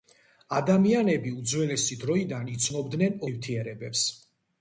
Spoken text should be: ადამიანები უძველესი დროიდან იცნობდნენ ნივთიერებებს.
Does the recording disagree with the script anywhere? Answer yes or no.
no